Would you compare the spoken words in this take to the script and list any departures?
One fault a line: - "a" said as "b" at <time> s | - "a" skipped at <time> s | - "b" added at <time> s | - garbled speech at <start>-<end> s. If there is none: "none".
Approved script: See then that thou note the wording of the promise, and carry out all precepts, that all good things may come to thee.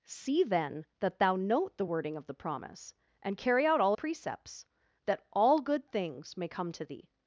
none